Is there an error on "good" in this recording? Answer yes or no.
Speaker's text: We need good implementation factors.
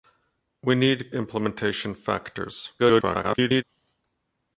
yes